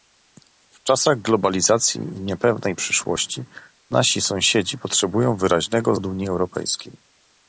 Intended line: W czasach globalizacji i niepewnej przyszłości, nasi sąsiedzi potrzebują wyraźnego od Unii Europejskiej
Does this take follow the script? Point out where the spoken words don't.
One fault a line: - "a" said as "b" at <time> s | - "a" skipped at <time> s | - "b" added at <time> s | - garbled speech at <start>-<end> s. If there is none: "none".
none